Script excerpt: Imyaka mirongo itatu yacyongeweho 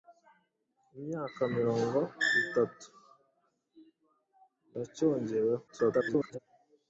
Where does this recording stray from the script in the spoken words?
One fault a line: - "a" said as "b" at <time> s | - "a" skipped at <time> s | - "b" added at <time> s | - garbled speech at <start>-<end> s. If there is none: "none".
- garbled speech at 5.7-6.4 s